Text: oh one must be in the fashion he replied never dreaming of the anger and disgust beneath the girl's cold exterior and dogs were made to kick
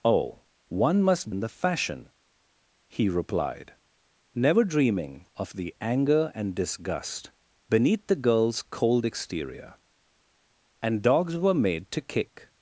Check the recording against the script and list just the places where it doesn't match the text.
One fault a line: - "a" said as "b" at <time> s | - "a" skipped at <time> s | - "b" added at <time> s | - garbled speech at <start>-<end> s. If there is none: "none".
- "be" skipped at 1.3 s